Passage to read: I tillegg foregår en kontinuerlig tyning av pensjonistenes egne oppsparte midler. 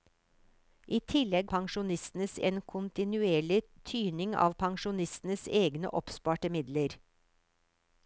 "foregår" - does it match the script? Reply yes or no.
no